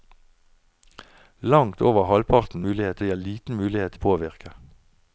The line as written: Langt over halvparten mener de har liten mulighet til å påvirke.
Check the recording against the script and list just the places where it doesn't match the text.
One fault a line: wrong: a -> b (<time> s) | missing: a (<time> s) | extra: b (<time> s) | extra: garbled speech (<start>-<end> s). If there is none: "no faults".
wrong: mener -> mulighet (2.6 s)
missing: til (4.0 s)